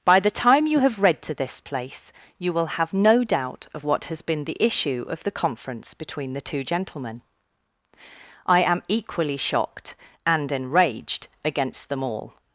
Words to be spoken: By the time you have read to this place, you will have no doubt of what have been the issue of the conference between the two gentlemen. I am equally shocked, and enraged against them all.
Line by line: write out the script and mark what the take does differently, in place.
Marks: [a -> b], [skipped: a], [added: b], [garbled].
By the time you have read to this place, you will have no doubt of what [have -> has] been the issue of the conference between the two gentlemen. I am equally shocked, and enraged against them all.